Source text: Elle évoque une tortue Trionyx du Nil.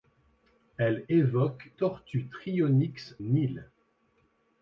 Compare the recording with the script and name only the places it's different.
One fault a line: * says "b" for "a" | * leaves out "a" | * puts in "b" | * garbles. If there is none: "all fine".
* leaves out "une"
* leaves out "du"